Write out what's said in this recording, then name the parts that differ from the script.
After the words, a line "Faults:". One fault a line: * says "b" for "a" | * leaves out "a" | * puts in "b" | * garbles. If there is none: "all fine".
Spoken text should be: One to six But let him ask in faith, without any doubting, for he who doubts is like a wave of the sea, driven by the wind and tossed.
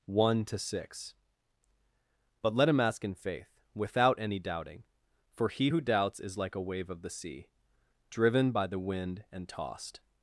One to six But let him ask in faith, without any doubting, for he who doubts is like a wave of the sea, driven by the wind and tossed.
Faults:
all fine